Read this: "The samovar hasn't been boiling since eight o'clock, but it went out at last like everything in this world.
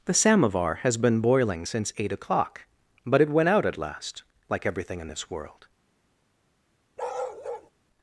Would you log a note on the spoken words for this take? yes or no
yes